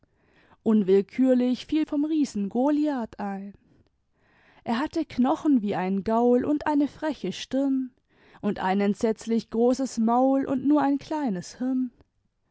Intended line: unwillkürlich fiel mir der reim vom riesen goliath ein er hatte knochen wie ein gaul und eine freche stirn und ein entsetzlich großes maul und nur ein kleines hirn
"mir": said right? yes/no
no